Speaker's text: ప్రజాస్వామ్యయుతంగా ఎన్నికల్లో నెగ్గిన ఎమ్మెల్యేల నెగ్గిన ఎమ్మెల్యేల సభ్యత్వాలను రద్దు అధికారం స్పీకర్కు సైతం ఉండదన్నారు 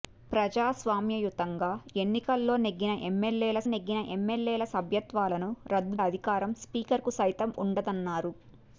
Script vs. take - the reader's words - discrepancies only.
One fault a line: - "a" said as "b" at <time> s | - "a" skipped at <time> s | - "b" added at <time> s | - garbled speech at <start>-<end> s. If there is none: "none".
none